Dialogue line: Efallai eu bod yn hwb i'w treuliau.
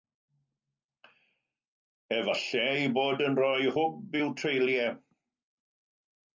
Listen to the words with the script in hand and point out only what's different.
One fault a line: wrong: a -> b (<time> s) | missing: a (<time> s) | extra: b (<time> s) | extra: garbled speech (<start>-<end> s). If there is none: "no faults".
extra: rhoi (3.4 s)